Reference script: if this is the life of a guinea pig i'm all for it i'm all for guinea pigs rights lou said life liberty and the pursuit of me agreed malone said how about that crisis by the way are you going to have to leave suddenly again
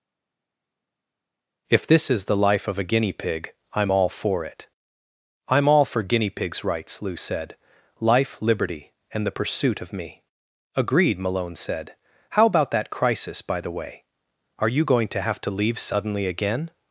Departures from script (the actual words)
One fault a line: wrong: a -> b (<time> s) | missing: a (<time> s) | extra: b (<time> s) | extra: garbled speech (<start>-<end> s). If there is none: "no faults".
no faults